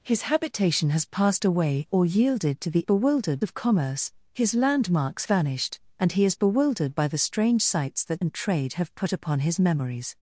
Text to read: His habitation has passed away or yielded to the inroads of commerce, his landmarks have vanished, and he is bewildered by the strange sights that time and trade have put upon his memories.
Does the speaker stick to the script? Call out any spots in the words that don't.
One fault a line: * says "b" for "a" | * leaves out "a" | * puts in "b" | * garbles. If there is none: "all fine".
* says "bewildered" for "inroads"
* leaves out "have"
* leaves out "time"